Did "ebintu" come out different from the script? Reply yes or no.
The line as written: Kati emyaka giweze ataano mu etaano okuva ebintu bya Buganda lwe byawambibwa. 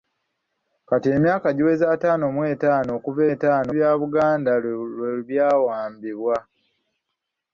yes